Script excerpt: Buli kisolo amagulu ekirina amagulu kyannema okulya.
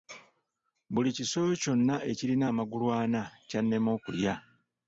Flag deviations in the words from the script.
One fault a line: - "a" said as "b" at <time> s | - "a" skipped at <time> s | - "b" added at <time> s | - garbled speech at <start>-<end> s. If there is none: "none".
- "amagulu" said as "kyonna" at 1.6 s
- "ana" added at 3.0 s